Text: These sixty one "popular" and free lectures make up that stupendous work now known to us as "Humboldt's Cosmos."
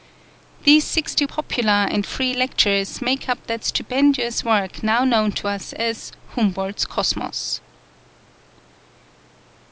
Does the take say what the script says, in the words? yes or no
no